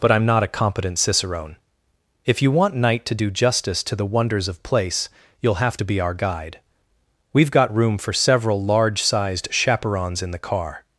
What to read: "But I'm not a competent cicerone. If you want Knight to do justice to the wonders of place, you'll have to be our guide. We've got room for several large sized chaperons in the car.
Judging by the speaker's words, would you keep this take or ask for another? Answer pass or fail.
pass